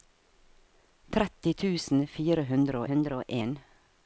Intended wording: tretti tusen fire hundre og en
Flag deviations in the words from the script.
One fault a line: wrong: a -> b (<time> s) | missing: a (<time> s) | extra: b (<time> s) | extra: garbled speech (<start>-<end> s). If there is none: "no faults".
extra: hundre (2.9 s)